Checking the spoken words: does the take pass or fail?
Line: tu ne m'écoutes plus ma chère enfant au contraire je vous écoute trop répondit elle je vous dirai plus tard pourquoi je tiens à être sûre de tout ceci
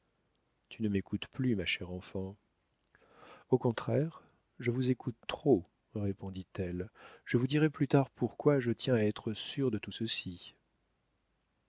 pass